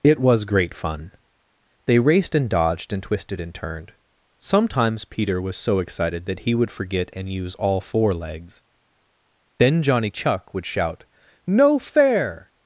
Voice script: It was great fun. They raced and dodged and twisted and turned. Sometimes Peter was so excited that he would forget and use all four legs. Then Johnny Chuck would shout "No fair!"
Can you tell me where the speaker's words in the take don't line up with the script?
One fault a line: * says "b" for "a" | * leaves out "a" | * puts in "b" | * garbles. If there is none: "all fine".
all fine